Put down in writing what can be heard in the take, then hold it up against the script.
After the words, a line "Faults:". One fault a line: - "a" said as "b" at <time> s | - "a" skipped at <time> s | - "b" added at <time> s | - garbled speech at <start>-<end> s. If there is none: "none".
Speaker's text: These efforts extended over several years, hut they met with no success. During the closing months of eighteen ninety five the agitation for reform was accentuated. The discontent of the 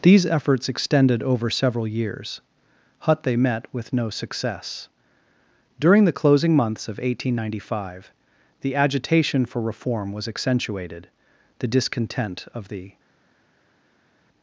These efforts extended over several years, hut they met with no success. During the closing months of eighteen ninety five the agitation for reform was accentuated. The discontent of the
Faults:
none